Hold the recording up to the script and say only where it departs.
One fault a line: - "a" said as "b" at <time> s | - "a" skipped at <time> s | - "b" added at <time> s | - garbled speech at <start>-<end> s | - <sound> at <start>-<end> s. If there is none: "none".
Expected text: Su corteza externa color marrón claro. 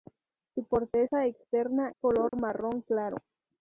- dropout at 2.3-2.3 s